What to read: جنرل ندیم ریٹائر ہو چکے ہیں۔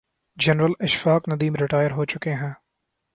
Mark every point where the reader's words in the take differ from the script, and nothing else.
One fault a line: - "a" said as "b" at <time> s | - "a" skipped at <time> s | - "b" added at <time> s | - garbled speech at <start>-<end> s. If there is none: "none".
- "اشفاق" added at 0.8 s